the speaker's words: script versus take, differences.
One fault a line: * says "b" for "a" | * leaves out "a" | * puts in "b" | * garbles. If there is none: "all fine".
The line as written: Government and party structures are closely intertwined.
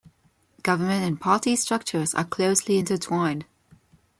all fine